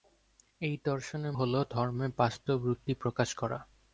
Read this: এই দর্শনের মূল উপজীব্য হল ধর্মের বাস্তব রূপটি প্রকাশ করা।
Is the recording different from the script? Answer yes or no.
yes